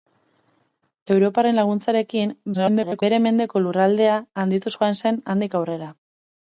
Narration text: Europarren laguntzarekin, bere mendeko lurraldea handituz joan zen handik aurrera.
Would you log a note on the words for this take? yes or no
yes